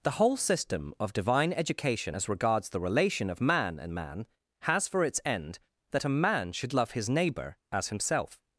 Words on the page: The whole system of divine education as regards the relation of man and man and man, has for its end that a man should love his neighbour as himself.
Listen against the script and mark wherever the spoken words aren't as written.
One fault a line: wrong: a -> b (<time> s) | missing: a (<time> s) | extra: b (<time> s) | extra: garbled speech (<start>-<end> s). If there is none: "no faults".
missing: and man (4.3 s)